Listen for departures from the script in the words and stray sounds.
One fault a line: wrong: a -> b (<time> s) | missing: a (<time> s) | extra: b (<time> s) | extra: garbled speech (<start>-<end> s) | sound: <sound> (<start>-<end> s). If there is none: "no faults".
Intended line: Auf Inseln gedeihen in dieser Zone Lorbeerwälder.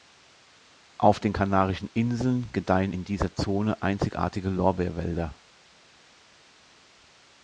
extra: den Kanarischen (1.2 s)
extra: einzigartige (3.8 s)